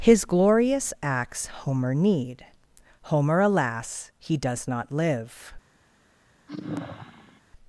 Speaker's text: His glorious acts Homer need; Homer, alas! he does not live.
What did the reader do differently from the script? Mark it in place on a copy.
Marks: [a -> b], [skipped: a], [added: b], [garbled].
His glorious acts Homer need; Homer, alas! he does not live.